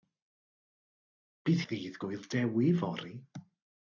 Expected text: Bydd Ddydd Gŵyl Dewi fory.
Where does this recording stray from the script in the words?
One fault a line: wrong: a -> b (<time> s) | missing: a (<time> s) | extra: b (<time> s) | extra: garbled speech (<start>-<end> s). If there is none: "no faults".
no faults